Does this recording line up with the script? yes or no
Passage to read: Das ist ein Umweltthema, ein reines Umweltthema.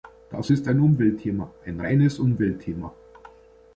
yes